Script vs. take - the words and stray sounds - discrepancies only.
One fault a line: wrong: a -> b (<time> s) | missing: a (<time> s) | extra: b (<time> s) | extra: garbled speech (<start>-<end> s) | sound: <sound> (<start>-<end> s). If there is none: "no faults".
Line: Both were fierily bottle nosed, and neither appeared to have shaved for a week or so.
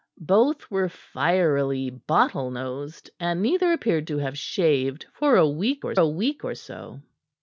extra: a week or (5.9 s)